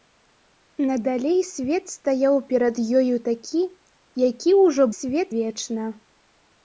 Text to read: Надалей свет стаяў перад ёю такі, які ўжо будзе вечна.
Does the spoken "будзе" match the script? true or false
false